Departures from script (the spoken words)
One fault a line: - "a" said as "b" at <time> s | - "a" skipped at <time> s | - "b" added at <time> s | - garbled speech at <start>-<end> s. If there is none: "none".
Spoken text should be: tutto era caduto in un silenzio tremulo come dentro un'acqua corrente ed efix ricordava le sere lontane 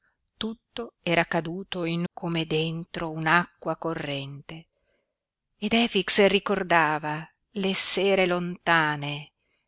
- "un silenzio tremulo" skipped at 2.0 s